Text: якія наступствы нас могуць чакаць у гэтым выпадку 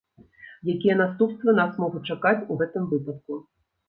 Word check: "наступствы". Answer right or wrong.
right